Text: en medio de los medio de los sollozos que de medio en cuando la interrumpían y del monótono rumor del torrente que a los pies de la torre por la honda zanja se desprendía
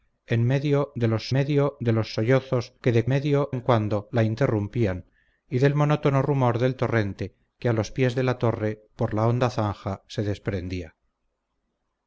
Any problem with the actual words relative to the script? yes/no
no